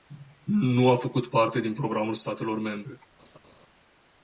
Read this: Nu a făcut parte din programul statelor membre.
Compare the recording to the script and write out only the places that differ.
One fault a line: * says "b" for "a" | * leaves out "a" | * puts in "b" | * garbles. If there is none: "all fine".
all fine